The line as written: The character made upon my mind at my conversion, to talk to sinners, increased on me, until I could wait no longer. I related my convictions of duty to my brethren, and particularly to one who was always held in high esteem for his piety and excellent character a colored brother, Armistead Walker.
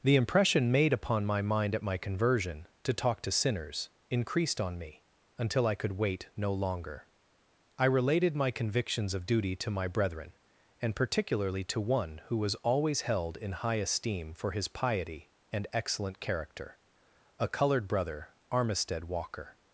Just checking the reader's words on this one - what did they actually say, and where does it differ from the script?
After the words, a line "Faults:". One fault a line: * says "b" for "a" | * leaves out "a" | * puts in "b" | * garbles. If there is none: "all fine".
The impression made upon my mind at my conversion, to talk to sinners, increased on me, until I could wait no longer. I related my convictions of duty to my brethren, and particularly to one who was always held in high esteem for his piety and excellent character a colored brother, Armistead Walker.
Faults:
* says "impression" for "character"